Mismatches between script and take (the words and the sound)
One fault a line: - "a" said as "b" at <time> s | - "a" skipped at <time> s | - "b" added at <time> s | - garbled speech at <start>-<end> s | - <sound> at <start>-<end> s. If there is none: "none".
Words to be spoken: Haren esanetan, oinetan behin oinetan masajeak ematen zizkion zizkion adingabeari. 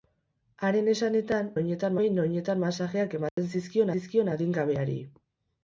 - dropout at 3.3-3.4 s